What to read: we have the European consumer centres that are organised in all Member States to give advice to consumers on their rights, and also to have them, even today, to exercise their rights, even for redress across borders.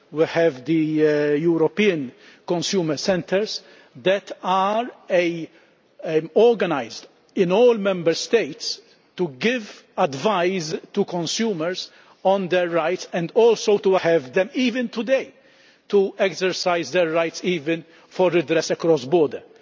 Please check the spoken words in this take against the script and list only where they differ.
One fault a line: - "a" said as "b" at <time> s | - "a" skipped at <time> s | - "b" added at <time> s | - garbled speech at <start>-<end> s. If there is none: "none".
none